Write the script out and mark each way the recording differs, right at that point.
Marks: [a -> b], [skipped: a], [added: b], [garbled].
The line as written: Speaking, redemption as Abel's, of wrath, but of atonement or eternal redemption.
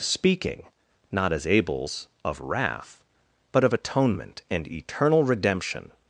Speaking, [redemption -> not] as Abel's, of wrath, but of atonement [or -> and] eternal redemption.